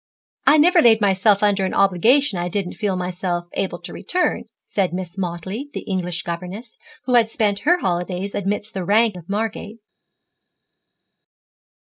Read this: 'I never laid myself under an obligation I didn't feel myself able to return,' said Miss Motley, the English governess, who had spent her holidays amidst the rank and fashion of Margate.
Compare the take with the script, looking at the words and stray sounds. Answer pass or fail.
fail